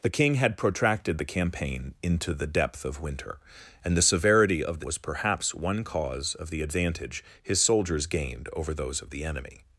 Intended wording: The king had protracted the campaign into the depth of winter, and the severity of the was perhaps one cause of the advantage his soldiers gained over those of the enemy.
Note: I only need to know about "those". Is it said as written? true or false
true